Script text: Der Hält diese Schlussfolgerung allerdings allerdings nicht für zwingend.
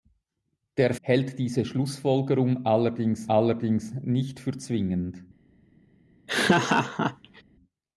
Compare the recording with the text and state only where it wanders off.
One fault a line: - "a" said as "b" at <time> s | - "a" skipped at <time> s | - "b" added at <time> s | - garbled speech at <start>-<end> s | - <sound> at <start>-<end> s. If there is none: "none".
- laugh at 6.3-7.4 s